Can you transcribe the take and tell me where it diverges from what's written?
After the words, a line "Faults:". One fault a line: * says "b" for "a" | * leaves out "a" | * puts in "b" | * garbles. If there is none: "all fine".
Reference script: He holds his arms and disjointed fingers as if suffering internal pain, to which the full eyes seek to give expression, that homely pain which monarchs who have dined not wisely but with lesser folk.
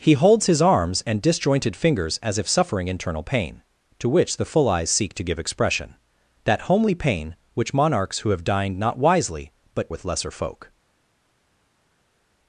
He holds his arms and disjointed fingers as if suffering internal pain, to which the full eyes seek to give expression, that homely pain which monarchs who have dined not wisely but with lesser folk.
Faults:
all fine